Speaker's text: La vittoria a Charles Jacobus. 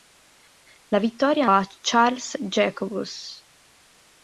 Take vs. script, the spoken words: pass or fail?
pass